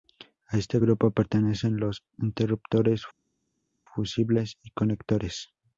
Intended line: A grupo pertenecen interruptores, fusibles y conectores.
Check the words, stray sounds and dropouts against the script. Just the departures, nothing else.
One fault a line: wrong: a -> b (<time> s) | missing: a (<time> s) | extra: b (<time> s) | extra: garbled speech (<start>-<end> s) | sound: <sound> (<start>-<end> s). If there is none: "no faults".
extra: este (0.6 s)
extra: los (1.8 s)